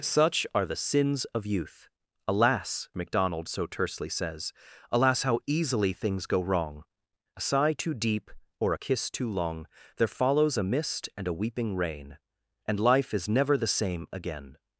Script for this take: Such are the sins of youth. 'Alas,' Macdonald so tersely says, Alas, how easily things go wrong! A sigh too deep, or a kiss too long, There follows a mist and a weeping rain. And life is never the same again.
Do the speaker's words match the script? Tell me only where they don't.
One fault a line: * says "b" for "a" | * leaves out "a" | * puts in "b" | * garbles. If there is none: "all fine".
all fine